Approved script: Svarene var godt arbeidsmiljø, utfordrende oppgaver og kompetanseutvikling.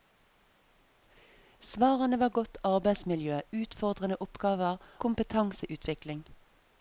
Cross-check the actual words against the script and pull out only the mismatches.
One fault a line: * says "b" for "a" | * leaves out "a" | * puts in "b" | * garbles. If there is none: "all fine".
* leaves out "og"